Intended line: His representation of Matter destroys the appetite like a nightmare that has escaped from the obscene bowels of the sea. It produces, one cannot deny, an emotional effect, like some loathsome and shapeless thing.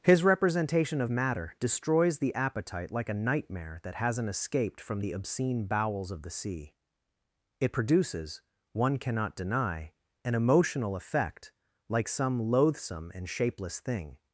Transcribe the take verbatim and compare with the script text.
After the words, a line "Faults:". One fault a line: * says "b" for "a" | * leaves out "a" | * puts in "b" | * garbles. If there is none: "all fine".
His representation of Matter destroys the appetite like a nightmare that hasn't escaped from the obscene bowels of the sea. It produces, one cannot deny, an emotional effect, like some loathsome and shapeless thing.
Faults:
* says "hasn't" for "has"